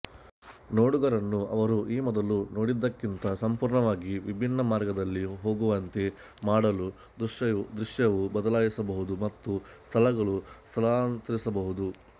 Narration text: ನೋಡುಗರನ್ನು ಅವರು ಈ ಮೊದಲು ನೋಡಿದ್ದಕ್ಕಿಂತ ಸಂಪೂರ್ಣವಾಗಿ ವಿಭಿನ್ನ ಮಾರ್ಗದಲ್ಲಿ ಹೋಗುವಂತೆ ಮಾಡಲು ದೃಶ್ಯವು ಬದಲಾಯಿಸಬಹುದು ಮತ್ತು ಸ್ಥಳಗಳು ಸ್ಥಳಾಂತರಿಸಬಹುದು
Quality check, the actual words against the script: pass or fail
pass